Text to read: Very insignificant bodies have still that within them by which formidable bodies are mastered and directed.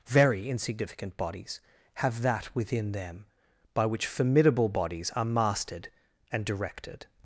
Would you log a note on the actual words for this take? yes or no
yes